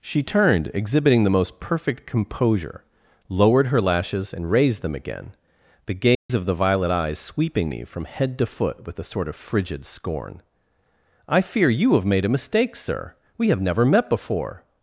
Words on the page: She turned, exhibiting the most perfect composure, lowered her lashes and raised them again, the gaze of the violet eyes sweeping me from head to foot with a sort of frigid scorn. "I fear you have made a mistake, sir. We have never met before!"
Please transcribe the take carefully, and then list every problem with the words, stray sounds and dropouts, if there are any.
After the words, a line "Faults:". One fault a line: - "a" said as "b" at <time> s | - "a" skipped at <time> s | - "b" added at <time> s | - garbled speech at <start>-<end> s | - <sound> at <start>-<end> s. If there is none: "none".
She turned, exhibiting the most perfect composure, lowered her lashes and raised them again, the gaze of the violet eyes sweeping me from head to foot with a sort of frigid scorn. "I fear you have made a mistake, sir. We have never met before!"
Faults:
- dropout at 6.1-6.3 s